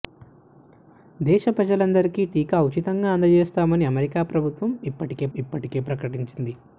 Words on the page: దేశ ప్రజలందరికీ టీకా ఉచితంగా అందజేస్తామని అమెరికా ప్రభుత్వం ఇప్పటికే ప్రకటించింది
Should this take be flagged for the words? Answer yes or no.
yes